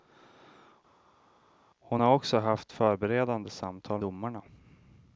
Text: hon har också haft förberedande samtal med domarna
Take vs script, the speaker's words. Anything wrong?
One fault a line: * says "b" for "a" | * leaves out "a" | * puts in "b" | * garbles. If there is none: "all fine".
* leaves out "med"